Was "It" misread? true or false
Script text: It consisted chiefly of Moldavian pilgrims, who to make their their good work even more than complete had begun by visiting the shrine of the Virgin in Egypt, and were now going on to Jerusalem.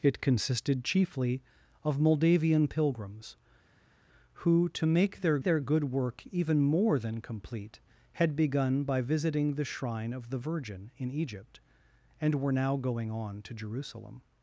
false